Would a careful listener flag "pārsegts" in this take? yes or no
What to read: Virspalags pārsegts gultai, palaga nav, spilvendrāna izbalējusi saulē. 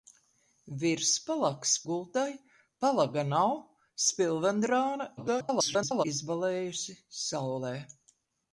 yes